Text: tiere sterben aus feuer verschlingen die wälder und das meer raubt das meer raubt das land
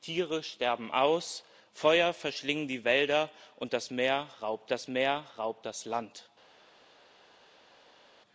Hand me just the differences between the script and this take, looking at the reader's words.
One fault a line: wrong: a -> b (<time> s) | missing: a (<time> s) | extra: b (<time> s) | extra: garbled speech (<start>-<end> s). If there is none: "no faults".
no faults